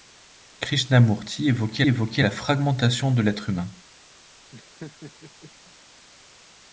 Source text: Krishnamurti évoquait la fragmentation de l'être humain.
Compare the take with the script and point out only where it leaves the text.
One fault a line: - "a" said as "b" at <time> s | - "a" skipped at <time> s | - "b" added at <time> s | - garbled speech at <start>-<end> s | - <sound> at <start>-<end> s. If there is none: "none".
- "évoquait" added at 1.9 s
- laugh at 4.5-5.5 s